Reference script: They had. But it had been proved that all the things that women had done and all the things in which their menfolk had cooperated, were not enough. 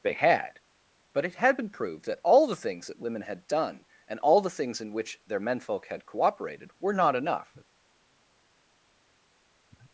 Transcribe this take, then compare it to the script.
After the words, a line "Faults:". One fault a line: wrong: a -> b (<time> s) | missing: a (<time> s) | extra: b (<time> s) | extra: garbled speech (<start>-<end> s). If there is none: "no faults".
They had. But it had been proved that all the things that women had done and all the things in which their menfolk had cooperated, were not enough.
Faults:
no faults